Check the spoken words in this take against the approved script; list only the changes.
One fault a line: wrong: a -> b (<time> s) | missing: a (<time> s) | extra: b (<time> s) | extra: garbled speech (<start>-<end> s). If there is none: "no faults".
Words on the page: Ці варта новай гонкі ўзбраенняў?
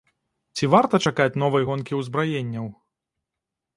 extra: чакаць (1.1 s)